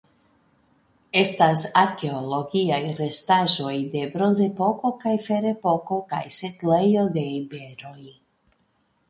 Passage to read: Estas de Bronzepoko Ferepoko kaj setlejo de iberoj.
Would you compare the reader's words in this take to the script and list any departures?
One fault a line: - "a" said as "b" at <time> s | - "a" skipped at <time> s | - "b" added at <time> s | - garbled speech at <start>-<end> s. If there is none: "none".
- "arkeologiaj restaĵoj" added at 1.8 s
- "kaj" added at 5.0 s